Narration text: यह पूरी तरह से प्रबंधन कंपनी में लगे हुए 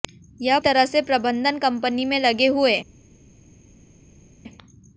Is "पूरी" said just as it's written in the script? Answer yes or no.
no